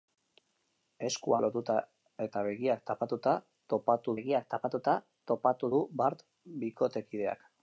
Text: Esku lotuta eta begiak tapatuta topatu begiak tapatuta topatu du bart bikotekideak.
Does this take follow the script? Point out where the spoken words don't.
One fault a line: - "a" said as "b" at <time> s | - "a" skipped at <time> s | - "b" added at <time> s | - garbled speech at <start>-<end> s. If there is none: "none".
none